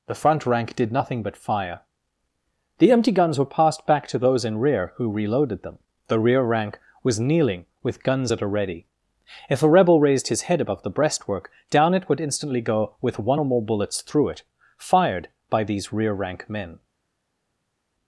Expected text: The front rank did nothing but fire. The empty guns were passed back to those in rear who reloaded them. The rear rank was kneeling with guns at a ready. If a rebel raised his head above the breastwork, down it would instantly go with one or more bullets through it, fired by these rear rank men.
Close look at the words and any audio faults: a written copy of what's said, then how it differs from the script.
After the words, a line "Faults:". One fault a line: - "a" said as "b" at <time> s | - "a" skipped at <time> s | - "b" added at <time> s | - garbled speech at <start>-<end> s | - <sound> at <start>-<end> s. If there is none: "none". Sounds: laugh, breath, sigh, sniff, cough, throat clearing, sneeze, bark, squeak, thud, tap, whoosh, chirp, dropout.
The front rank did nothing but fire. The empty guns were passed back to those in rear who reloaded them. The rear rank was kneeling with guns at a ready. If a rebel raised his head above the breastwork, down it would instantly go with one or more bullets through it, fired by these rear rank men.
Faults:
none